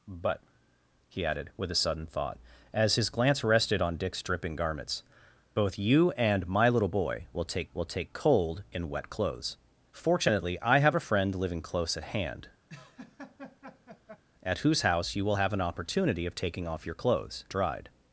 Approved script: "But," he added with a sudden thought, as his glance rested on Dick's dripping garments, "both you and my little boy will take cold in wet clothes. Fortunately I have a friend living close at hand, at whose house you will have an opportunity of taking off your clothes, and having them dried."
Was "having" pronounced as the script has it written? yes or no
no